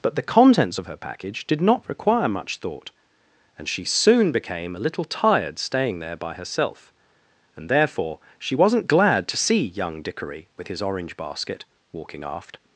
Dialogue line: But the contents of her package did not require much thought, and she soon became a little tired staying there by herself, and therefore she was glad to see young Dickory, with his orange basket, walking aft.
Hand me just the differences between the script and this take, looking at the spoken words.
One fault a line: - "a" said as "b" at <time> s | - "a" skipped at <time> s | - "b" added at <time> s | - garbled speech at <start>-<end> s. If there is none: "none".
- "was" said as "wasn't" at 8.5 s